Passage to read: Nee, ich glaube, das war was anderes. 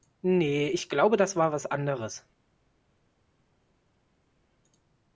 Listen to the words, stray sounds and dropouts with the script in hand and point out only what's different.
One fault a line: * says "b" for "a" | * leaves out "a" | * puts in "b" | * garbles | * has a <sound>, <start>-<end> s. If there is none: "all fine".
all fine